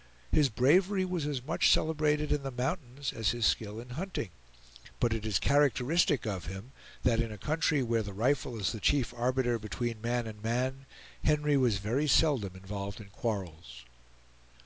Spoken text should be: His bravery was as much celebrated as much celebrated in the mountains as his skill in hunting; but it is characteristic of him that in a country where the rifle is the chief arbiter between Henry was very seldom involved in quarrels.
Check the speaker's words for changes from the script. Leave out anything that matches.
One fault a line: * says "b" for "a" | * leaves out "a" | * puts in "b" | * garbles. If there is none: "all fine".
* leaves out "as much celebrated"
* puts in "man and man"